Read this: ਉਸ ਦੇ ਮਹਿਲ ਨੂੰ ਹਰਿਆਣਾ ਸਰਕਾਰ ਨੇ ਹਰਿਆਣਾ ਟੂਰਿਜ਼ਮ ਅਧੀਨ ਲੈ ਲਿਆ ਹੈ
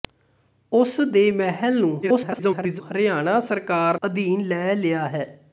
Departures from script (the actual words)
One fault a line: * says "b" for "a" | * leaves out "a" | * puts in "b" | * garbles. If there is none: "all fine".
* garbles
* leaves out "ਨੇ ਹਰਿਆਣਾ ਟੂਰਿਜ਼ਮ"